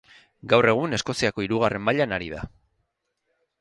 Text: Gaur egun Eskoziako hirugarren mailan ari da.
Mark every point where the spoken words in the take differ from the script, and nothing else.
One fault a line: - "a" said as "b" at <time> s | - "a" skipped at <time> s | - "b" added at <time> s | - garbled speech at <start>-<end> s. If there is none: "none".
none